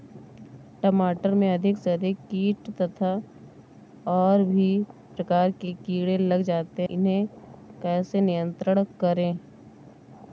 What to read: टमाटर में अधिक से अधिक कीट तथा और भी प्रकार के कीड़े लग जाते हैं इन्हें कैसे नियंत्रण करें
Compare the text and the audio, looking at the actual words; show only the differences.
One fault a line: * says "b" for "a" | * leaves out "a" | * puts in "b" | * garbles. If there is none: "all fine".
* leaves out "हैं"